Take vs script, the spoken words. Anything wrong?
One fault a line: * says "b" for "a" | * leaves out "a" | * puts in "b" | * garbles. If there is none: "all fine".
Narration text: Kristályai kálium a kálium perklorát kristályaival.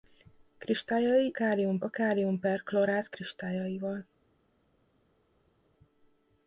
all fine